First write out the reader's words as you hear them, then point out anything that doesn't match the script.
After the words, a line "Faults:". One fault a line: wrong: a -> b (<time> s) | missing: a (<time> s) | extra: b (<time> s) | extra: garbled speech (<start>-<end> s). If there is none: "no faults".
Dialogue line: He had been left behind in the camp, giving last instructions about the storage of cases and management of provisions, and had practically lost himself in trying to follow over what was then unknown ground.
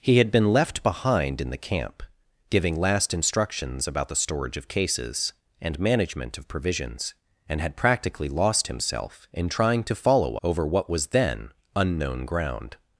He had been left behind in the camp, giving last instructions about the storage of cases and management of provisions, and had practically lost himself in trying to follow over what was then unknown ground.
Faults:
no faults